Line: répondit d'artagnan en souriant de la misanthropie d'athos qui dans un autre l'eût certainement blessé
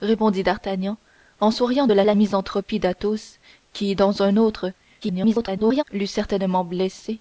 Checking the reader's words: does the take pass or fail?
fail